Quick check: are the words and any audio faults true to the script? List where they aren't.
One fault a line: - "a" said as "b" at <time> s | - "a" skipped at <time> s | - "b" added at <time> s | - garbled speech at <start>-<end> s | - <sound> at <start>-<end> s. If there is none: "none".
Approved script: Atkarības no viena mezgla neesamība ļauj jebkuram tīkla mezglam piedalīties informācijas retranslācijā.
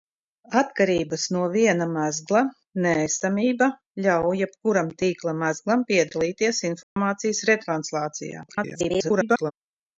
- dropout at 6.8-7.0 s
- garbled speech at 8.5-9.5 s